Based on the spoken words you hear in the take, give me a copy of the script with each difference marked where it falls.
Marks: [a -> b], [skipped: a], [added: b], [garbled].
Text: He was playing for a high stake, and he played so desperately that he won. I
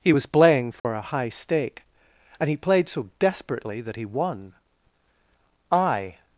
He was playing for a high stake, and he played so desperately that he won. I